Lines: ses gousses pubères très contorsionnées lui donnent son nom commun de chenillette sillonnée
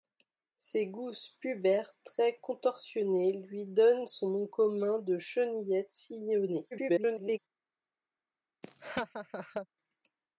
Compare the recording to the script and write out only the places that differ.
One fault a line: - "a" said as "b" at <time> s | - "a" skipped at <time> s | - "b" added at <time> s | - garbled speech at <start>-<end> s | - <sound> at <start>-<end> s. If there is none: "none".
- garbled speech at 6.7-7.4 s
- laugh at 8.6-9.7 s